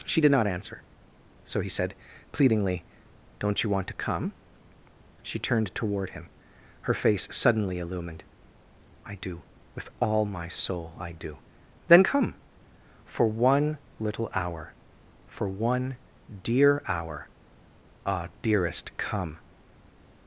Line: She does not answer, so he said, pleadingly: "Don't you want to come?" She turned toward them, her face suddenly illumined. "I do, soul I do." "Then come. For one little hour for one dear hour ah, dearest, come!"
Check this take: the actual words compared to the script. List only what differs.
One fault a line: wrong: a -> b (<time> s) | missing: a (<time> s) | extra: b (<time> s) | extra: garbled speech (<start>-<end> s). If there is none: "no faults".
wrong: does -> did (0.2 s)
wrong: them -> him (6.1 s)
extra: with all my (9.8 s)